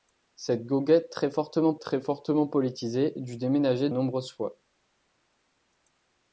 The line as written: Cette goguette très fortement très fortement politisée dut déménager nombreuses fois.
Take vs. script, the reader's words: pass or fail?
pass